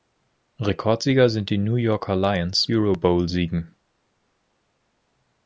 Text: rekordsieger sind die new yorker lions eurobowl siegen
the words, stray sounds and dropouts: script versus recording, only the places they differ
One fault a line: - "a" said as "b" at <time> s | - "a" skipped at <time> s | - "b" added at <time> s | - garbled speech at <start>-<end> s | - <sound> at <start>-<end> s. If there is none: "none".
none